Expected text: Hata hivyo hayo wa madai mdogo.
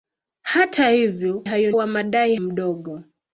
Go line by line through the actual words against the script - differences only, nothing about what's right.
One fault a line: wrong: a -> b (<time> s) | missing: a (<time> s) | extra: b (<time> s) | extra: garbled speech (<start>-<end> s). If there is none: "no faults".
no faults